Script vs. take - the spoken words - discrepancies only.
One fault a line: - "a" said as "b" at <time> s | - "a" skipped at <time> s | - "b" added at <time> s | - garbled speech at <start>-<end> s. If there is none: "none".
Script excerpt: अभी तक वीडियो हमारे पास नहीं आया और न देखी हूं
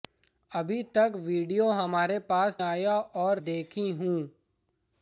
- "नहीं" skipped at 2.6 s
- "न" skipped at 3.4 s